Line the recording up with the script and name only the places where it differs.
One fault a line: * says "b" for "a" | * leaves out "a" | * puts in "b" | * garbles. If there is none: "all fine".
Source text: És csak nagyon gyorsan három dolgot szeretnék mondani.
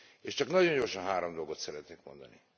all fine